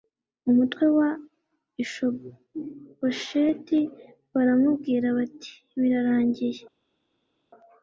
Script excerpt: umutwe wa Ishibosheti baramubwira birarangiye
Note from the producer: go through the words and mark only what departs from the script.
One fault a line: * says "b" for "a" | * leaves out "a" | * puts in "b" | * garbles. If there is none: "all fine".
* puts in "bati"